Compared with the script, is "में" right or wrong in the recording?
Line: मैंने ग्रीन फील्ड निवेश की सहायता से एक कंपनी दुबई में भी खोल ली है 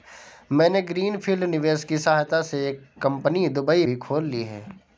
wrong